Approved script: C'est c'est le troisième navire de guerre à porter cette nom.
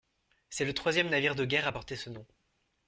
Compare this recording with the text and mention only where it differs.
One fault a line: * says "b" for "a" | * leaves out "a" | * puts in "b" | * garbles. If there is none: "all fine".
* leaves out "c'est"
* says "ce" for "cette"